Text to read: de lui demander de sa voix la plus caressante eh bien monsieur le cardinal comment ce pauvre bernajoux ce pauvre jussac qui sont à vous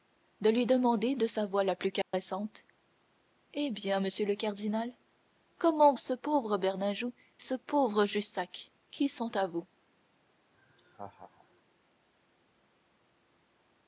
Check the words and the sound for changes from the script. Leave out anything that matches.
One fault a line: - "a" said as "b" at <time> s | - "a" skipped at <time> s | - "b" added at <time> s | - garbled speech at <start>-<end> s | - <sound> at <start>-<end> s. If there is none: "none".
- dropout at 2.0-2.1 s
- laugh at 10.5-11.6 s